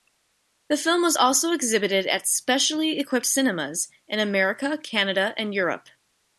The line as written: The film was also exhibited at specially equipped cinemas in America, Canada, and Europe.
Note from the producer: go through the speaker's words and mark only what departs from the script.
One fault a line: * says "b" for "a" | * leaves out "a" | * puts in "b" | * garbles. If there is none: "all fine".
all fine